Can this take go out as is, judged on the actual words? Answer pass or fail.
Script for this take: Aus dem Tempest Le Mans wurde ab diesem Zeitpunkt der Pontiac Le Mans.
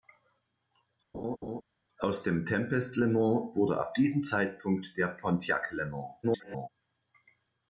fail